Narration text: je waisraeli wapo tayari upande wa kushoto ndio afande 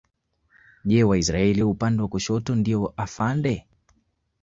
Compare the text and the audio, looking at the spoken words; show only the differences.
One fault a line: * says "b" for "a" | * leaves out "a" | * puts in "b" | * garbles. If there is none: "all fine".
* leaves out "wapo tayari"